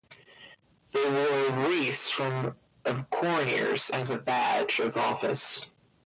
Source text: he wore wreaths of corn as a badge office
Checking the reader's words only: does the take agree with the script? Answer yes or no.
no